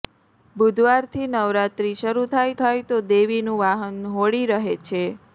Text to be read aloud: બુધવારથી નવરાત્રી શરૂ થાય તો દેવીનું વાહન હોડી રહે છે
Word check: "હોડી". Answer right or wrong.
right